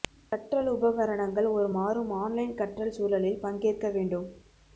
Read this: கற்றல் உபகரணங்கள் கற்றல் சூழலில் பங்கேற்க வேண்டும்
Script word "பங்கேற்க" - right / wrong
right